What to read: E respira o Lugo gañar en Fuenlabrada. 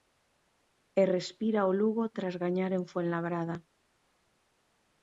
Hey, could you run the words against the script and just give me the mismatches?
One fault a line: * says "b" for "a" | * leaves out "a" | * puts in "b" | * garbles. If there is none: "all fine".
* puts in "tras"